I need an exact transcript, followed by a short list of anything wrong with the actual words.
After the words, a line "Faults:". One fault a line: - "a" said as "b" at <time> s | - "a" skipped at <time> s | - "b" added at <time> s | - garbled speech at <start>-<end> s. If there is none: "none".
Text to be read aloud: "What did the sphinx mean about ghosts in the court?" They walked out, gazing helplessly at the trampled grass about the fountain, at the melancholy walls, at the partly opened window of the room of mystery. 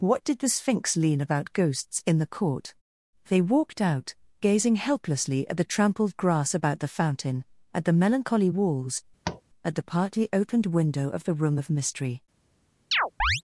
"What did the sphinx lean about ghosts in the court?" They walked out, gazing helplessly at the trampled grass about the fountain, at the melancholy walls, at the partly opened window of the room of mystery.
Faults:
- "mean" said as "lean" at 1.0 s